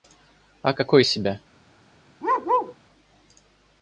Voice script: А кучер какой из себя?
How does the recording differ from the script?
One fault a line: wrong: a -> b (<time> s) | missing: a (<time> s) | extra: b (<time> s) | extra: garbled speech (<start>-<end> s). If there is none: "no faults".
missing: кучер (0.7 s)